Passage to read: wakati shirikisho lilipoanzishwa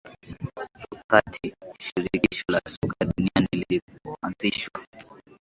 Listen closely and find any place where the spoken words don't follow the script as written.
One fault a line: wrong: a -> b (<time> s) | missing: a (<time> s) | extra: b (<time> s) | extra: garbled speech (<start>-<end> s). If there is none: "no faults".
extra: la soka duniani (2.5 s)